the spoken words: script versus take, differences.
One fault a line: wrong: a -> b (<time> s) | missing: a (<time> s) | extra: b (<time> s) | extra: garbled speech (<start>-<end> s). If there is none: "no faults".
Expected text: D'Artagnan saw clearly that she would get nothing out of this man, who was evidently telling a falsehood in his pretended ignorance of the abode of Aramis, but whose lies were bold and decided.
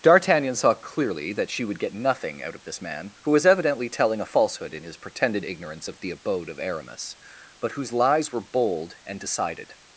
no faults